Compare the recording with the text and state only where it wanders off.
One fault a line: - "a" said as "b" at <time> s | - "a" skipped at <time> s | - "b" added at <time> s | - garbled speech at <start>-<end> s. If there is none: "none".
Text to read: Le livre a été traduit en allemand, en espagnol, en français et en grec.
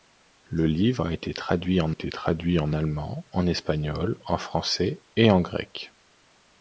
- "été traduit en" added at 1.9 s